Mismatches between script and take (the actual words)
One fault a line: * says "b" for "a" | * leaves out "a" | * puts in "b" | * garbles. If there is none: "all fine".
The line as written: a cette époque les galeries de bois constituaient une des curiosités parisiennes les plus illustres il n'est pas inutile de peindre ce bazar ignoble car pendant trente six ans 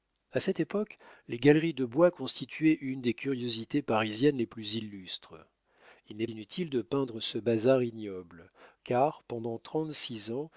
* leaves out "pas"